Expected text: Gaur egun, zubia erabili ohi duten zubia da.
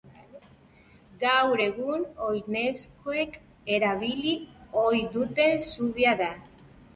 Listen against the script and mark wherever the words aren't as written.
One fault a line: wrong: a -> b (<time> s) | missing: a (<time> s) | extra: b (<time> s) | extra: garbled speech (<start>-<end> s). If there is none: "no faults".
wrong: zubia -> oinezkoek (2.3 s)